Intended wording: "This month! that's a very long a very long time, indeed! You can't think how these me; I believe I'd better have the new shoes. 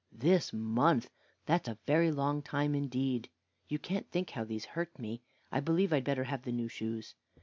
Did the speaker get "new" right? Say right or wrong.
right